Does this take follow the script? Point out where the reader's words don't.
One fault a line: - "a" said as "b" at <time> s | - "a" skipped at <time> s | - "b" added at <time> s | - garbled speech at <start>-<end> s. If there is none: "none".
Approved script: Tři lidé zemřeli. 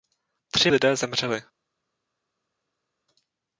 none